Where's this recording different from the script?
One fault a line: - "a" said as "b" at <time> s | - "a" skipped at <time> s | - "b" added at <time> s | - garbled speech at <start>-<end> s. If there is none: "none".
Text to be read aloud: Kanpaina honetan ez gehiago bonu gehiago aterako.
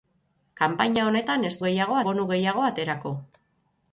none